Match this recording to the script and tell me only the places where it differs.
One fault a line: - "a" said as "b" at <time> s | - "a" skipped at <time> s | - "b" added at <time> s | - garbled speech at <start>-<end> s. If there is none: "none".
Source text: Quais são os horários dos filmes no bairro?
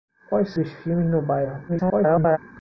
- "são os horários" skipped at 0.5 s
- garbled speech at 1.7-2.4 s